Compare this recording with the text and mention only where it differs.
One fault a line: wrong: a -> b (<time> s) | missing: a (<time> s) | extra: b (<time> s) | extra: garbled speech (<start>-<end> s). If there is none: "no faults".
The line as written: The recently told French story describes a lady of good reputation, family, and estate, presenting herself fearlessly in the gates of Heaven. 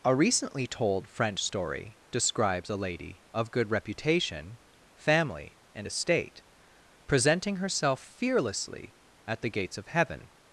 wrong: The -> A (0.0 s)
wrong: in -> at (9.3 s)